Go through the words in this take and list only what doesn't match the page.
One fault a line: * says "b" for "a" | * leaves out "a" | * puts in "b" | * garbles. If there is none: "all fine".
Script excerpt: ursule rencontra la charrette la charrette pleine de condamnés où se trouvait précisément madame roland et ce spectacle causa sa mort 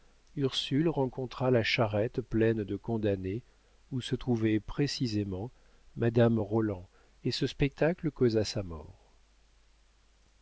* leaves out "la charrette"